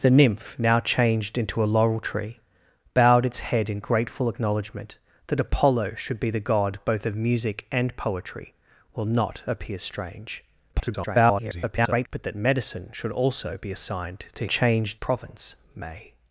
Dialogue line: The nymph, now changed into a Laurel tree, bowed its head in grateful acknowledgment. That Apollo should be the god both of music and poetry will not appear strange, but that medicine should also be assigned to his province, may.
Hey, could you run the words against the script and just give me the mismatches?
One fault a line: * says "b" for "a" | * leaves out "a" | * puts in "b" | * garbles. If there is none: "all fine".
* garbles
* says "changed" for "his"